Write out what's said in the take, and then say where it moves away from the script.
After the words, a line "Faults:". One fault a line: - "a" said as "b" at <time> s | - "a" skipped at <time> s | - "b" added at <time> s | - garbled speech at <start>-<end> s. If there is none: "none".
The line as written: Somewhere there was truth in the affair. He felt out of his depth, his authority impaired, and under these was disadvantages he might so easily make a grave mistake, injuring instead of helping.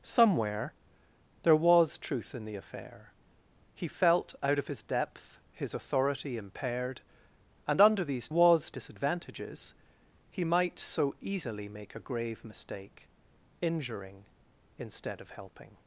Somewhere there was truth in the affair. He felt out of his depth, his authority impaired, and under these was disadvantages he might so easily make a grave mistake, injuring instead of helping.
Faults:
none